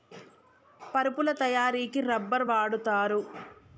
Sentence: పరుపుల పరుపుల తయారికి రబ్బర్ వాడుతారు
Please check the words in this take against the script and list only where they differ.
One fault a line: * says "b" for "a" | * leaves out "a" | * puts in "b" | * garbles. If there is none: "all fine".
* leaves out "పరుపుల"